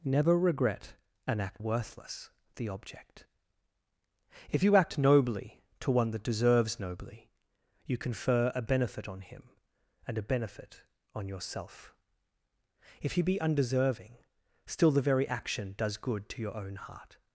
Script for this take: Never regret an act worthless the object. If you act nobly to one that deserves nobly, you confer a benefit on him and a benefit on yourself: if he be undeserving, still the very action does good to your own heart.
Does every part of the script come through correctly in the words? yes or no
yes